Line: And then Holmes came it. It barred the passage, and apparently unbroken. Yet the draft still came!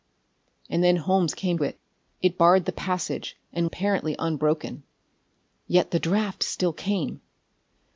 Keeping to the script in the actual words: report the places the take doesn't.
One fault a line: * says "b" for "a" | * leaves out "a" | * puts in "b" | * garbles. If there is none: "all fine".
all fine